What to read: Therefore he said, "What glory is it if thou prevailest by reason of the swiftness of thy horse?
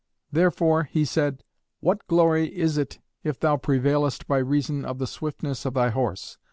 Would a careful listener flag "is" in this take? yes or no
no